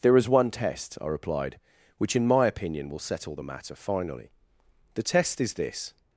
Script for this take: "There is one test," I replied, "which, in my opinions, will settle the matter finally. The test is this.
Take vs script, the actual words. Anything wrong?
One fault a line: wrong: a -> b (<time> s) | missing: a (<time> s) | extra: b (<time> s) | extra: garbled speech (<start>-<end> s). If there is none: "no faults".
wrong: opinions -> opinion (2.5 s)